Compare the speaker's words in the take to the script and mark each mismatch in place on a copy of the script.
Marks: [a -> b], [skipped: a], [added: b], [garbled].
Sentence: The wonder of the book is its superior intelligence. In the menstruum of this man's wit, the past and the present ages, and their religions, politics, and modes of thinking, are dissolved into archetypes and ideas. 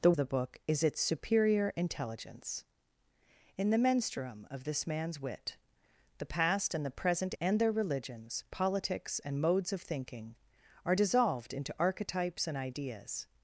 The [skipped: wonder of] the book is its superior intelligence. In the menstruum of this man's wit, the past and the present [skipped: ages,] and their religions, politics, and modes of thinking, are dissolved into archetypes and ideas.